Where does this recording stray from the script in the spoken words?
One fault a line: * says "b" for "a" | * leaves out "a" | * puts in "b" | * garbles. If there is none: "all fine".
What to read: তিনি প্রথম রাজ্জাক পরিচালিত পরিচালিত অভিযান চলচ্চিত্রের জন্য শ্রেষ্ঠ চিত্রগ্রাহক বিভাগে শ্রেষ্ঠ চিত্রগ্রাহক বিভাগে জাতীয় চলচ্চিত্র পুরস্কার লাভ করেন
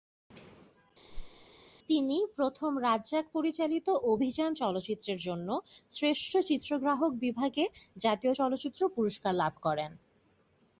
* leaves out "পরিচালিত"
* leaves out "শ্রেষ্ঠ চিত্রগ্রাহক বিভাগে"